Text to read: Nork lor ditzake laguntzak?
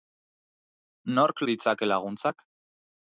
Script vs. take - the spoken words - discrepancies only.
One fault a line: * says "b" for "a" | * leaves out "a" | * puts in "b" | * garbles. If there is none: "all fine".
* leaves out "lor"